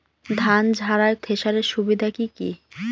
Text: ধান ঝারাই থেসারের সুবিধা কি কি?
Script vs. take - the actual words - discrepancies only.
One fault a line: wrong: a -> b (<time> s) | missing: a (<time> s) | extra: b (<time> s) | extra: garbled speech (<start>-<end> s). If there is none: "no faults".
no faults